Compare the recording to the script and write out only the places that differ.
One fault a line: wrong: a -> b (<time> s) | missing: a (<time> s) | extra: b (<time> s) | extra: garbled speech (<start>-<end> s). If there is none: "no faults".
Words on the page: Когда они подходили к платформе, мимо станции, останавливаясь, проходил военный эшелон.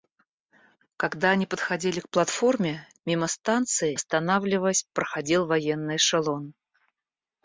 no faults